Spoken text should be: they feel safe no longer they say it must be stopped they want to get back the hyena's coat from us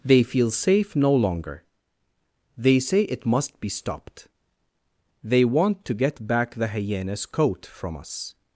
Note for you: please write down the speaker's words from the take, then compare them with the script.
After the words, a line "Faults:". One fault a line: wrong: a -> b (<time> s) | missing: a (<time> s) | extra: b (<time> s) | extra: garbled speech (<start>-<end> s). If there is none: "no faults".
they feel safe no longer they say it must be stopped they want to get back the hyena's coat from us
Faults:
no faults